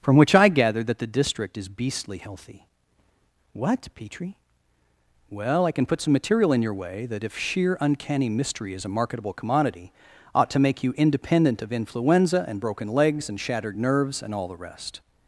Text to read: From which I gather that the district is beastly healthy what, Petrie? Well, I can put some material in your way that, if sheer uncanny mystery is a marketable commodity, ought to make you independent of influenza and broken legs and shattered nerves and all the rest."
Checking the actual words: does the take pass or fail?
pass